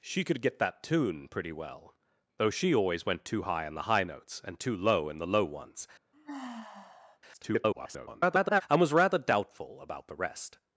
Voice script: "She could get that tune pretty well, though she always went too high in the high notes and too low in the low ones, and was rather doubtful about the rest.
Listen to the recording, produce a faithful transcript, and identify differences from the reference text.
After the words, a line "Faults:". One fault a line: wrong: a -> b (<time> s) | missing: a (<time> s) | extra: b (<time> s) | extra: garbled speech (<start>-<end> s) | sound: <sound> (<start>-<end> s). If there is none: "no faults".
"She could get that tune pretty well, though she always went too high in the high notes and too low in the low ones, [garbled] and was rather doubtful about the rest.
Faults:
sound: sigh (6.1-7.2 s)
extra: garbled speech (7.3-8.6 s)